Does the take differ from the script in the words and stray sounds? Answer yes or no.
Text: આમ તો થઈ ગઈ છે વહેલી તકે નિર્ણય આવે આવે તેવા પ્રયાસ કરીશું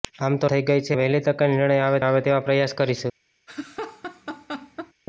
yes